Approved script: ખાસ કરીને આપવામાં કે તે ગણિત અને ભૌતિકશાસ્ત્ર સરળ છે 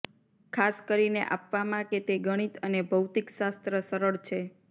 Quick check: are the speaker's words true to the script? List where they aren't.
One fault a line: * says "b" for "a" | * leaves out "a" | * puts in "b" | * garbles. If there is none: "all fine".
all fine